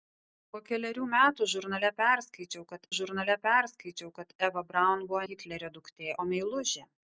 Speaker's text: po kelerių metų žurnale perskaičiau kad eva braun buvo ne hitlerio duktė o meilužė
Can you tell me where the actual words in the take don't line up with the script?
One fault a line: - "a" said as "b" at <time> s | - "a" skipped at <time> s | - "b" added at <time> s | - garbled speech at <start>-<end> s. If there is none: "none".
- "žurnale perskaičiau kad" added at 3.0 s
- "ne" skipped at 5.2 s